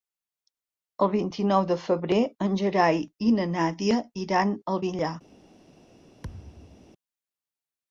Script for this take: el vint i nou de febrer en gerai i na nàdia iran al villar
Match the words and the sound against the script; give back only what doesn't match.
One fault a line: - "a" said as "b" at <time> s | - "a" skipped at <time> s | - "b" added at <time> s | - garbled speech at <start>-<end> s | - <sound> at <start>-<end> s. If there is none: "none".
- thud at 6.2-6.9 s